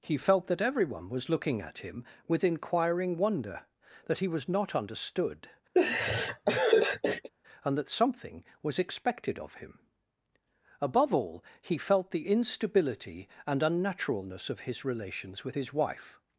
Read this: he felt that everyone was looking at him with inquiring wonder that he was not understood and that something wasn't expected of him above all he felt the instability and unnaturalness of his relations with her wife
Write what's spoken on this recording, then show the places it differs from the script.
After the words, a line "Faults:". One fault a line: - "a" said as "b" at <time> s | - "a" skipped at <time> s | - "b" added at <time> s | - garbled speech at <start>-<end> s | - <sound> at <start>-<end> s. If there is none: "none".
he felt that everyone was looking at him with inquiring wonder that he was not understood and that something was expected of him above all he felt the instability and unnaturalness of his relations with his wife
Faults:
- laugh at 5.7-7.3 s
- "wasn't" said as "was" at 8.6 s
- "her" said as "his" at 15.5 s